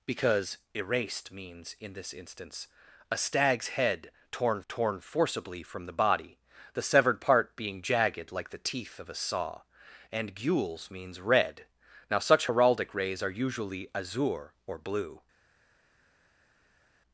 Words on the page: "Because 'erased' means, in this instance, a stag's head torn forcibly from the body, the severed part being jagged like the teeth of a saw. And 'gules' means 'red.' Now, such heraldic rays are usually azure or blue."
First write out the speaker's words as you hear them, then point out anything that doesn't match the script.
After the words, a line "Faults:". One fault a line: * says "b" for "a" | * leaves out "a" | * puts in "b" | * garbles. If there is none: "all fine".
"Because 'erased' means, in this instance, a stag's head torn torn forcibly from the body, the severed part being jagged like the teeth of a saw. And 'gules' means 'red.' Now, such heraldic rays are usually azure or blue."
Faults:
* puts in "torn"